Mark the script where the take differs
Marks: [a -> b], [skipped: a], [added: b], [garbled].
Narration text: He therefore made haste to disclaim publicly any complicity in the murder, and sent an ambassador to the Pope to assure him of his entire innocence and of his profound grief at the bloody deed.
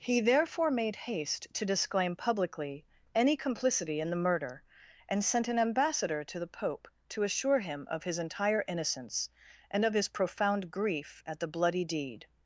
He therefore made haste to disclaim publicly any complicity in the murder, and sent an ambassador to the Pope to assure him of his entire innocence and of his profound grief at the bloody deed.